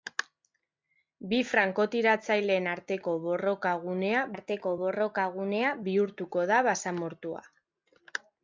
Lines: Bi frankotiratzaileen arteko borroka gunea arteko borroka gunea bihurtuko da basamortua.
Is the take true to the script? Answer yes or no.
yes